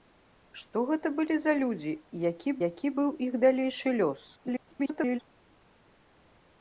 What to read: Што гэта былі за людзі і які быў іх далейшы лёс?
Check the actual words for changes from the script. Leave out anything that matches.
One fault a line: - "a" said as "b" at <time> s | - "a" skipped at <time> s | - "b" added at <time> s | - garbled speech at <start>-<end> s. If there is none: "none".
- "які" added at 2.7 s
- garbled speech at 4.4-5.2 s